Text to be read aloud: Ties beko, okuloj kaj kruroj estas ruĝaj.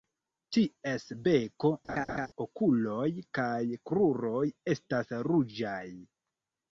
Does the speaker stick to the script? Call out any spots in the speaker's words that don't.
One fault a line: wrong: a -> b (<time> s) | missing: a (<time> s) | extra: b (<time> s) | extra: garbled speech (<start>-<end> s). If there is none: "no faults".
no faults